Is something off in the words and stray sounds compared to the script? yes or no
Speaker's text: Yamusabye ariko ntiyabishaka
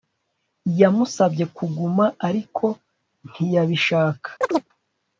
yes